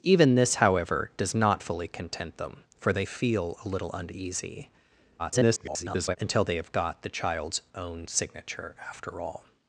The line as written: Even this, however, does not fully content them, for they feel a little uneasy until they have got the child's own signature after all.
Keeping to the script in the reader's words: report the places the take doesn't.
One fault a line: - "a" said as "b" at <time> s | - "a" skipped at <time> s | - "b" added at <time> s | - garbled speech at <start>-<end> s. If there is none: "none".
- garbled speech at 5.2-6.2 s